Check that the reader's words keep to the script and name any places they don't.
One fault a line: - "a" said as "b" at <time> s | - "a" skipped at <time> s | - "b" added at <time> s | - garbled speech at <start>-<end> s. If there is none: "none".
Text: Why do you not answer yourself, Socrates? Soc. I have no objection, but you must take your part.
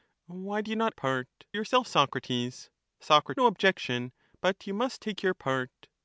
- "answer" said as "part" at 0.9 s
- "I have" skipped at 3.3 s